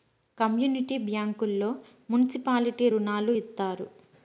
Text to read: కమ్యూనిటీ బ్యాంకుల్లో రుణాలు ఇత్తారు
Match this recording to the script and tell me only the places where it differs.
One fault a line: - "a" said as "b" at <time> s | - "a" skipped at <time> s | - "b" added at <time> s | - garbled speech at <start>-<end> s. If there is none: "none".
- "మున్సిపాలిటీ" added at 2.1 s